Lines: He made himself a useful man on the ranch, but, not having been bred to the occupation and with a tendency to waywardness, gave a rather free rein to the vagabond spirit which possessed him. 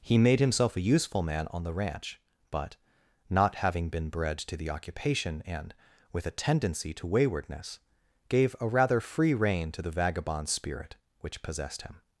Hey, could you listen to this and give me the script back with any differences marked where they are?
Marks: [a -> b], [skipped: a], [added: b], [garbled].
He made himself a useful man on the ranch, but, not having been bred to the occupation and with a tendency to waywardness, gave a rather free rein to the vagabond spirit which possessed him.